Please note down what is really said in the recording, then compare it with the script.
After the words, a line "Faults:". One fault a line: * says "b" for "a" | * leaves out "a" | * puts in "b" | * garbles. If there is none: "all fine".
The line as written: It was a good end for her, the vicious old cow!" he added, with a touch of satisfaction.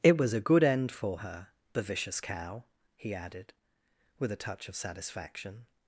It was a good end for her, the vicious cow!" he added, with a touch of satisfaction.
Faults:
* leaves out "old"